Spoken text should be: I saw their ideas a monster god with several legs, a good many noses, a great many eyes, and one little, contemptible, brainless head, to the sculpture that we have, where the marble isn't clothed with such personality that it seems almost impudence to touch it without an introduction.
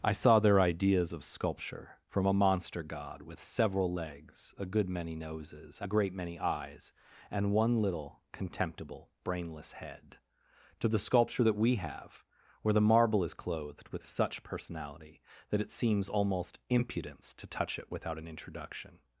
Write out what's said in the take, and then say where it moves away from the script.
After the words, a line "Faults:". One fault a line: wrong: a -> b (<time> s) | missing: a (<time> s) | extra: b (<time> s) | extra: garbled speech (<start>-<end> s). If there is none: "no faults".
I saw their ideas of sculpture, from a monster god with several legs, a good many noses, a great many eyes, and one little, contemptible, brainless head, to the sculpture that we have, where the marble is clothed with such personality that it seems almost impudence to touch it without an introduction.
Faults:
extra: of sculpture from (1.1 s)
wrong: isn't -> is (13.2 s)